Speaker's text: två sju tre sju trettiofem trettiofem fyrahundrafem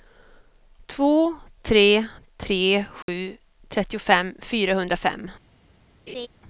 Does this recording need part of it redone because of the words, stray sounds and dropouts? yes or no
yes